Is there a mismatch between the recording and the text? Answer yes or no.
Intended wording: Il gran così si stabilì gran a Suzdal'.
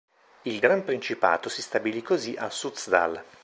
yes